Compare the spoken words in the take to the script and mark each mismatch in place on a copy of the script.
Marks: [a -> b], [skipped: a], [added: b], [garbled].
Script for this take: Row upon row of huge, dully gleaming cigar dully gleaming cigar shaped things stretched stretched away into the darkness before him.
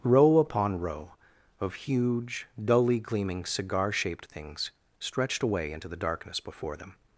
Row upon row of huge, dully gleaming cigar [skipped: dully gleaming cigar] shaped things stretched [skipped: stretched] away into the darkness before [him. -> them]